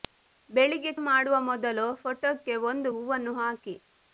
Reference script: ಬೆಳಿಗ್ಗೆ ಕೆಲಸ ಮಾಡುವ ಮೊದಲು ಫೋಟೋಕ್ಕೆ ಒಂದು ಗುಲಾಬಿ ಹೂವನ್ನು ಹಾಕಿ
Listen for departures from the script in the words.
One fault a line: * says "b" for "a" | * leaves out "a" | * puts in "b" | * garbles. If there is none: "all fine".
* leaves out "ಕೆಲಸ"
* leaves out "ಗುಲಾಬಿ"